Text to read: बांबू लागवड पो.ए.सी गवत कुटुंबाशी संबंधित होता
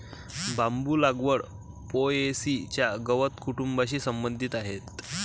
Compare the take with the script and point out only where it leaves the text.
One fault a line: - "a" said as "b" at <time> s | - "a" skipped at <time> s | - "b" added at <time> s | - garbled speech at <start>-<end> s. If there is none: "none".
- "च्या" added at 2.7 s
- "होता" said as "आहे" at 4.5 s